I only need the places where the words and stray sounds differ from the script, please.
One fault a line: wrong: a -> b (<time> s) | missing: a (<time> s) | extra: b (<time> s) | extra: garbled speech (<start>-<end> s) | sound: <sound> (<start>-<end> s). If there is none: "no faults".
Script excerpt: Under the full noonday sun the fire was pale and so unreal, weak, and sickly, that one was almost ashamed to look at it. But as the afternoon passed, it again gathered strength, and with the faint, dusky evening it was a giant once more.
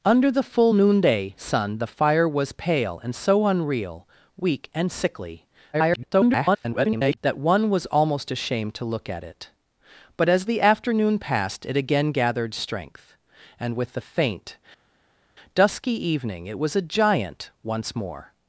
extra: garbled speech (5.7-7.2 s)